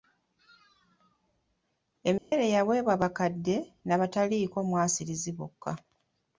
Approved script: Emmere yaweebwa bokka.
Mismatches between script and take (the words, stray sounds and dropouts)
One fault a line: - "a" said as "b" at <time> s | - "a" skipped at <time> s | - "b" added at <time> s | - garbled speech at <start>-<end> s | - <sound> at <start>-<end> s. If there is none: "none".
- dropout at 2.2-2.3 s
- "bakadde n'abataliiko mwasirizi" added at 3.0 s